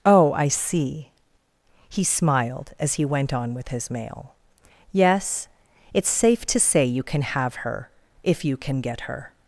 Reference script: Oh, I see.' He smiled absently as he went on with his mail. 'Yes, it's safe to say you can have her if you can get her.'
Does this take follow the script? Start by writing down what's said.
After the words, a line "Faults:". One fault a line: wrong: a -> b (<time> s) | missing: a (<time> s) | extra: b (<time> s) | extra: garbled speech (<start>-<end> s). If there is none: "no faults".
Oh, I see.' He smiled as he went on with his mail. 'Yes, it's safe to say you can have her if you can get her.'
Faults:
missing: absently (2.7 s)